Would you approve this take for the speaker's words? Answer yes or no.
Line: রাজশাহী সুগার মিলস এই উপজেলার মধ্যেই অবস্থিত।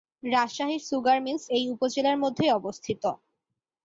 yes